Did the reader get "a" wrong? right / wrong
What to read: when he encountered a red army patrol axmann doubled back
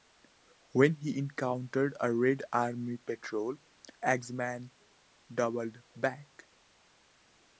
right